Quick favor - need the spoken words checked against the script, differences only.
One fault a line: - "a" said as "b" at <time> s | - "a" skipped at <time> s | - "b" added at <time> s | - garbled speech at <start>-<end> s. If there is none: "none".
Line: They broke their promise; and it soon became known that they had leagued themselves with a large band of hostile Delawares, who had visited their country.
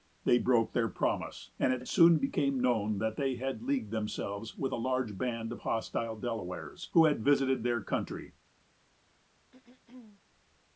- "it" added at 1.8 s